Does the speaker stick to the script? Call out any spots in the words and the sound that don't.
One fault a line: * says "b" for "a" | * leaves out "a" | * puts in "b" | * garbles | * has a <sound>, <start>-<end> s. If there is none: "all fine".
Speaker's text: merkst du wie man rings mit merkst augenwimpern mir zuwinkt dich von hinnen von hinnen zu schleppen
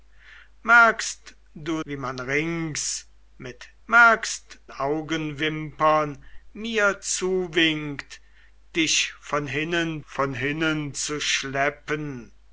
all fine